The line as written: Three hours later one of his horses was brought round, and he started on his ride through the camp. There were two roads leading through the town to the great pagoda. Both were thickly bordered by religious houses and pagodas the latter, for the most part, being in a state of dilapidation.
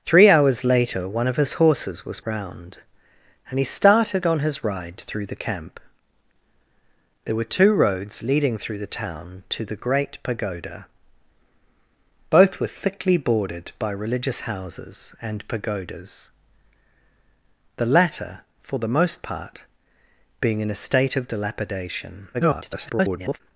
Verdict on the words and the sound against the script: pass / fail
fail